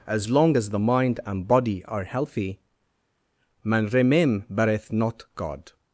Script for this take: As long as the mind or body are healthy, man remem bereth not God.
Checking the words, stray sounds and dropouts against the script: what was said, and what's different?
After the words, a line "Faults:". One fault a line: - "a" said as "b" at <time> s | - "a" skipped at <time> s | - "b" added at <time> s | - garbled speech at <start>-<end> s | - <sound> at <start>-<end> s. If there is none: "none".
As long as the mind and body are healthy, man remem bereth not God.
Faults:
- "or" said as "and" at 1.2 s